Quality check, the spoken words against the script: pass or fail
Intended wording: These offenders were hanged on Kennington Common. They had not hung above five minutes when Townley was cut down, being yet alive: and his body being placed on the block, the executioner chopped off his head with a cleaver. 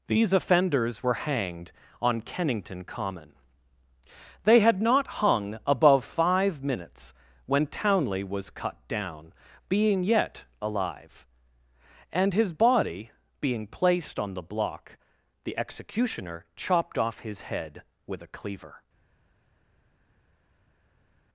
pass